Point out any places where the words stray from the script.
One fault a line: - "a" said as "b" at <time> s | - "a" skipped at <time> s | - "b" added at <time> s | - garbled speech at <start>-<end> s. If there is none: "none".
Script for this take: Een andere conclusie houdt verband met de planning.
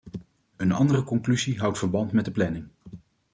none